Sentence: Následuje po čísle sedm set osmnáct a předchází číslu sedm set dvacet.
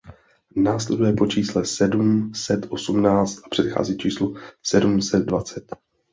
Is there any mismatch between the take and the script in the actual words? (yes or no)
no